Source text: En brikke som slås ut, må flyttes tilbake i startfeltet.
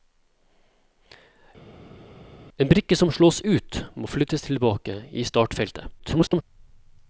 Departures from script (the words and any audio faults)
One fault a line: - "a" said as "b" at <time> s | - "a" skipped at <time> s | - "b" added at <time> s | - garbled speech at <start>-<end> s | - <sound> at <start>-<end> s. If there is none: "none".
- garbled speech at 6.0-6.4 s